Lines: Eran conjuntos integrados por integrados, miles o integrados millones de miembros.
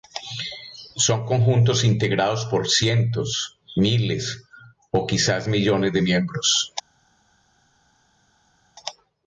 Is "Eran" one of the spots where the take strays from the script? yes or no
yes